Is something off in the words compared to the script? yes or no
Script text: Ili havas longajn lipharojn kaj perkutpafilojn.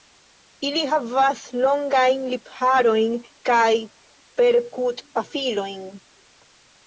no